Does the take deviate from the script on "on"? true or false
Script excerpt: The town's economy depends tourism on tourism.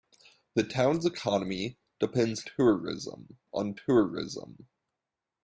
false